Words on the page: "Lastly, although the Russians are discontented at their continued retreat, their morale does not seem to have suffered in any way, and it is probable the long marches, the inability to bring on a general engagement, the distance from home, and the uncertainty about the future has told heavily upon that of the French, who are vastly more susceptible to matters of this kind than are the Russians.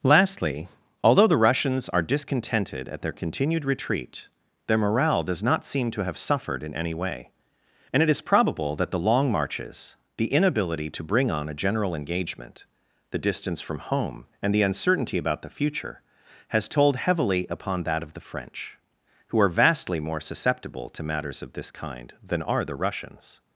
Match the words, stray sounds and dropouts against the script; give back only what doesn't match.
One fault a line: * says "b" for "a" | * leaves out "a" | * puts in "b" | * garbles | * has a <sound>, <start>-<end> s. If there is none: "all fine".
* puts in "that"